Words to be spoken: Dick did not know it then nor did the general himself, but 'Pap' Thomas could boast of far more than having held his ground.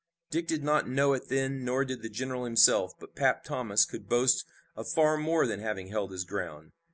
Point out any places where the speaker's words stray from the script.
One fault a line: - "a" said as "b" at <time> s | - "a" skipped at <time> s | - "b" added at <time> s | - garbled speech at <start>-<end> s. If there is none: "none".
none